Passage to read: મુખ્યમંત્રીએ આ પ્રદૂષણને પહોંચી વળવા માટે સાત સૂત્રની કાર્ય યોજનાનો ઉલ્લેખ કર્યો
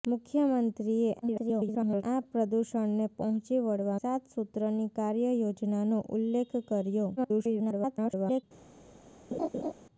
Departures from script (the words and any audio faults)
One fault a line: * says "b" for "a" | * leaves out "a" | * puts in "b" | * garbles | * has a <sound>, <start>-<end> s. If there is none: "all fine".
* garbles
* leaves out "માટે"
* garbles
* has a laugh, 9.3-9.7 s